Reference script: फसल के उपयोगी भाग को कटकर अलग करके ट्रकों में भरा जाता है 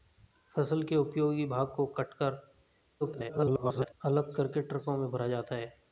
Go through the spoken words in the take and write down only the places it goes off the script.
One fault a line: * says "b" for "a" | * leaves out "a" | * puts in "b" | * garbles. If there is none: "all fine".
* garbles